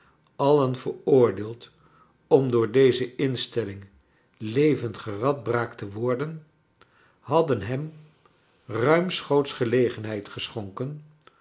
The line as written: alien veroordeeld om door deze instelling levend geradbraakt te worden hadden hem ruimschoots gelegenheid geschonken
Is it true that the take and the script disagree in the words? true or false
false